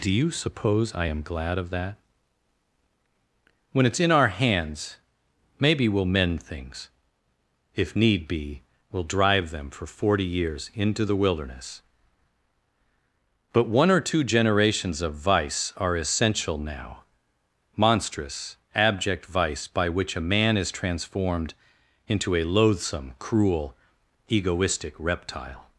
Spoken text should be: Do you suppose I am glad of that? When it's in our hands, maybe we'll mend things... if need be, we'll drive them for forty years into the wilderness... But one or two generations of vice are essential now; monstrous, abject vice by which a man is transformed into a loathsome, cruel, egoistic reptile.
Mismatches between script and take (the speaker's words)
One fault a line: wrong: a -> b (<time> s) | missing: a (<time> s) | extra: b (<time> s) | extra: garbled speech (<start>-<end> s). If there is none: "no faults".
no faults